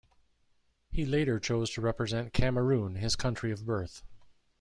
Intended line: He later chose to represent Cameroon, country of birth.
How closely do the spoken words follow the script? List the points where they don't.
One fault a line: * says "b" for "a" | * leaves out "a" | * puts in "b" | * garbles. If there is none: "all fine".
* puts in "his"